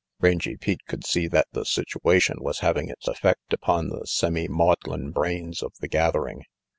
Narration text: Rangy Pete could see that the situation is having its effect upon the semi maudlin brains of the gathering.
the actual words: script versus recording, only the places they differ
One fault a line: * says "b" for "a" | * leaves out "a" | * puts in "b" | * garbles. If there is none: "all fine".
* says "was" for "is"